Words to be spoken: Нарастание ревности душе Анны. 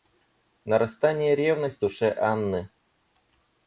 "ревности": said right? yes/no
yes